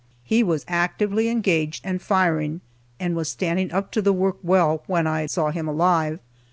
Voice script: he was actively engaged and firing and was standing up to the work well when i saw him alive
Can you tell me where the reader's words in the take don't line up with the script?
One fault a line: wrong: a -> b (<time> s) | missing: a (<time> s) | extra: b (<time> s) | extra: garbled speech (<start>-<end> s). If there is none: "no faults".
no faults